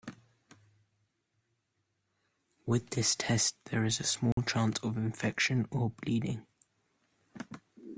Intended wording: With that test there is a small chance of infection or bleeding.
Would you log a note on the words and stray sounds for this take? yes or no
yes